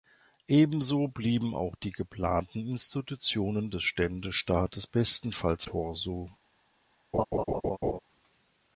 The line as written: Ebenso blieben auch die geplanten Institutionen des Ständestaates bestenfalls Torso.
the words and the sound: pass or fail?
fail